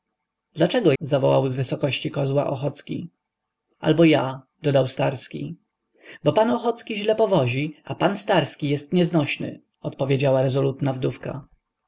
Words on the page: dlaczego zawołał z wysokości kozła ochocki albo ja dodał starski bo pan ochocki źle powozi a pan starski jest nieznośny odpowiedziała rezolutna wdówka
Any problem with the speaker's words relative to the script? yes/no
no